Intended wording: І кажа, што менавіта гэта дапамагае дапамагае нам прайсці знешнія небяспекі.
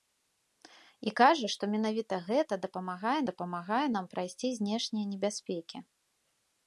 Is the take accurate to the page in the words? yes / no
yes